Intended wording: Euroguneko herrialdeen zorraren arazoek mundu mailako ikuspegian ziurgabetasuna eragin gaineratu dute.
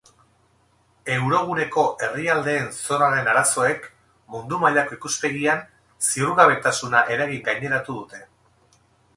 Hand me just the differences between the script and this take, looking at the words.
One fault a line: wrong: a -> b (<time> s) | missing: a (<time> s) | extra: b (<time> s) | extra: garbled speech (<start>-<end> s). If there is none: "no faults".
no faults